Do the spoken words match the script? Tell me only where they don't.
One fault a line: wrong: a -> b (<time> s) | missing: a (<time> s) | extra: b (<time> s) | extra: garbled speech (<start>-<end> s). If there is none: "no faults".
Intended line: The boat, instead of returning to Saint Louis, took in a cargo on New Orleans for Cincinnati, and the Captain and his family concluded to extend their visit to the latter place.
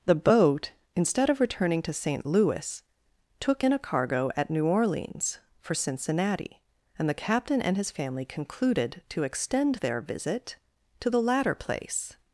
wrong: on -> at (4.4 s)